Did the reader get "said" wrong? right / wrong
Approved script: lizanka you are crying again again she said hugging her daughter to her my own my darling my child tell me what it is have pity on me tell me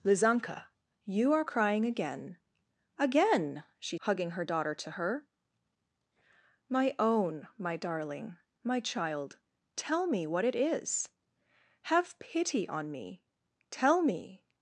wrong